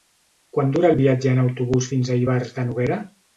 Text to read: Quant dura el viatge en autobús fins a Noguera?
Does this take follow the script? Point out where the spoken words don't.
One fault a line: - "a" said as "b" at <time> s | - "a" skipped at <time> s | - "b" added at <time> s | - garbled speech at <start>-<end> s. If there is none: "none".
- "Ivars de" added at 2.3 s